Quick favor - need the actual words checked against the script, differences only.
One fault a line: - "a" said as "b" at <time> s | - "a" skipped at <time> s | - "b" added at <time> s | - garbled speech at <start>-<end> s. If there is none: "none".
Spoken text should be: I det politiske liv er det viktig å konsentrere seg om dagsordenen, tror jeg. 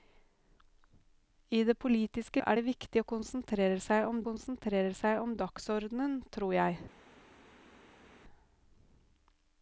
- "liv" skipped at 2.4 s
- "konsentrere seg om" added at 4.3 s